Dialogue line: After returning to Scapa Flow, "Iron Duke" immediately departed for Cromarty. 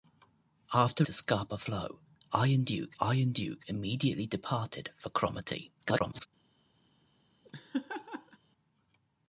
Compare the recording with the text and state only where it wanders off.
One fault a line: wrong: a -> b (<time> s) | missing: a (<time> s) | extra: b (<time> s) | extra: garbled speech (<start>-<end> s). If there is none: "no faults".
missing: returning (1.1 s)
extra: iron Duke (3.0 s)
extra: garbled speech (5.8-6.3 s)